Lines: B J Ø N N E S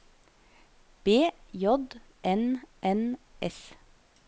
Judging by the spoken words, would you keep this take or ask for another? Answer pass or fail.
fail